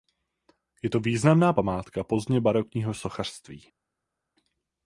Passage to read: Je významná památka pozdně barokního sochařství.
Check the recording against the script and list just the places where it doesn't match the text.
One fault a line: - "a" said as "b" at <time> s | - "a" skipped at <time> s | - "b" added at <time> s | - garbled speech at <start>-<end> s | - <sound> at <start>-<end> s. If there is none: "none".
- "to" added at 0.9 s